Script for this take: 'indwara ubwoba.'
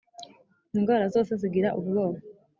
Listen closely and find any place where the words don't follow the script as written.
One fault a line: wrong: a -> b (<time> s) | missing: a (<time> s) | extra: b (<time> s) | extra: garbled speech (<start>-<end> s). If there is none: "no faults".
extra: zose zigira (1.1 s)